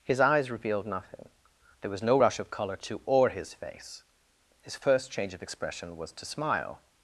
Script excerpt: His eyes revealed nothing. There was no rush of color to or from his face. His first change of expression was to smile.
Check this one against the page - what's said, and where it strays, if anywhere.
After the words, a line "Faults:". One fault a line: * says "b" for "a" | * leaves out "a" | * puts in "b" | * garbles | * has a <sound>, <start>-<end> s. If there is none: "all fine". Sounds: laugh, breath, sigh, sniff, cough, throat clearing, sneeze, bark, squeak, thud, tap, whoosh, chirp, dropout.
His eyes revealed nothing. There was no rush of color to or his face. His first change of expression was to smile.
Faults:
* leaves out "from"